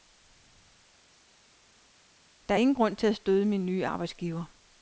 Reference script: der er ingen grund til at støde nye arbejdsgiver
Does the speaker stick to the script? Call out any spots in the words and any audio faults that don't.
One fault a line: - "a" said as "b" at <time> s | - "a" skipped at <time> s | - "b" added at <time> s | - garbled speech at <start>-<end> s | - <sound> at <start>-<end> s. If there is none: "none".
- "min" added at 3.4 s